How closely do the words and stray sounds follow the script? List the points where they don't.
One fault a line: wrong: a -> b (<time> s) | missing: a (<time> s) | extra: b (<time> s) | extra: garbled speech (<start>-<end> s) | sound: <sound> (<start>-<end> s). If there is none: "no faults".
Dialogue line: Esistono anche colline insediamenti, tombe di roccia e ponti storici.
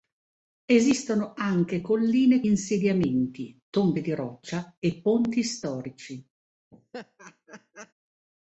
sound: laugh (6.7-7.9 s)